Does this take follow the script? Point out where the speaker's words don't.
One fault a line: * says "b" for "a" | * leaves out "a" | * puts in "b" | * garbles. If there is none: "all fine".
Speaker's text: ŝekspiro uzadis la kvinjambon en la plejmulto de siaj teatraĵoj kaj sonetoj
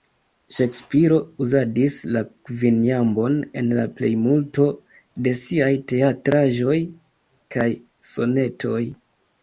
all fine